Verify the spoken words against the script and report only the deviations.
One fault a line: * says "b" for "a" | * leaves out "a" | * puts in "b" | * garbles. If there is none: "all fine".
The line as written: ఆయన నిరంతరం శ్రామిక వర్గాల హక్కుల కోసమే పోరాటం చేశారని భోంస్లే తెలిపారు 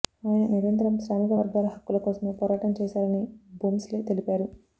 all fine